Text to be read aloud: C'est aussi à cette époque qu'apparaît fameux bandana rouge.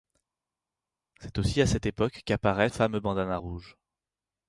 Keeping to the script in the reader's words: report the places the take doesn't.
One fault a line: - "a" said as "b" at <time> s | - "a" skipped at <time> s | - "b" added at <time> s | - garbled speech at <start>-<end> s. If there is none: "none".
none